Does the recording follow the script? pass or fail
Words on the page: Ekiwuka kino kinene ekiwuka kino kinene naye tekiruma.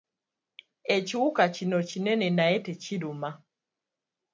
fail